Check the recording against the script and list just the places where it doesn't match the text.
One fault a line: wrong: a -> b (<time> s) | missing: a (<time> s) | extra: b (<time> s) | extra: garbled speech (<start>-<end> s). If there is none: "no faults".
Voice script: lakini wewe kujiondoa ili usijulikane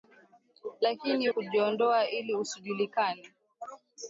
missing: wewe (1.3 s)